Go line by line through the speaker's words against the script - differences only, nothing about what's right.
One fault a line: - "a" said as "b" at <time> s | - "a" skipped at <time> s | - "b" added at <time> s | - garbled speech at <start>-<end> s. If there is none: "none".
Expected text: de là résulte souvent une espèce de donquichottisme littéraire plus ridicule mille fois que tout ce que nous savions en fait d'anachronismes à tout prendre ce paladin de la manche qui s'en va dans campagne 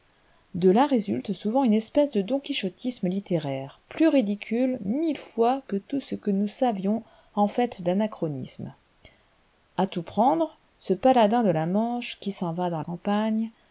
none